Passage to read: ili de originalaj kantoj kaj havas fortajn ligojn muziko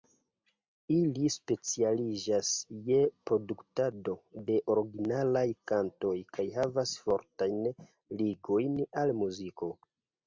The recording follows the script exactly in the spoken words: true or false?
false